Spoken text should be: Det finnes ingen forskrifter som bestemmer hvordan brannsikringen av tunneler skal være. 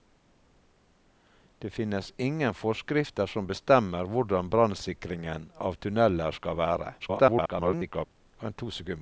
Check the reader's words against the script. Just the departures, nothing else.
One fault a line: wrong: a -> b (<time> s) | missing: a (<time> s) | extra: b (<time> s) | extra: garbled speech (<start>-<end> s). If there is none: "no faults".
extra: garbled speech (7.0-8.1 s)